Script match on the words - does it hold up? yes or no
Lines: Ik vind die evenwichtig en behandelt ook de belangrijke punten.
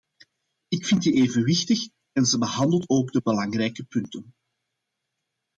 no